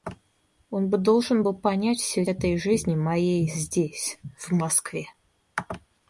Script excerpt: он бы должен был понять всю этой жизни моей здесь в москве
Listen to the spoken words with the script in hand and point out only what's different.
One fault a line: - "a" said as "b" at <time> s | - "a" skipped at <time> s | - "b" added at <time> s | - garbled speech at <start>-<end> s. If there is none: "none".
none